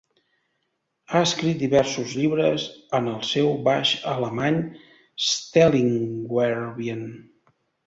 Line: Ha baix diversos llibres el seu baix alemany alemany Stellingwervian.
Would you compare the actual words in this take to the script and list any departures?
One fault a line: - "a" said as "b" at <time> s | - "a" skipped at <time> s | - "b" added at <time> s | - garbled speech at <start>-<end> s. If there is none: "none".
- "baix" said as "escrit" at 1.2 s
- "en" added at 3.0 s
- "alemany" skipped at 4.6 s